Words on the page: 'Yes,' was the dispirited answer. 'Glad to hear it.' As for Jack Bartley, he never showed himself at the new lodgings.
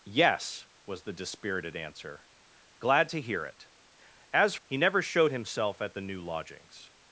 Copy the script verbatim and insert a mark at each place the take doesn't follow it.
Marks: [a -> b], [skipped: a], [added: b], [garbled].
'Yes,' was the dispirited answer. 'Glad to hear it.' As [skipped: for Jack Bartley,] he never showed himself at the new lodgings.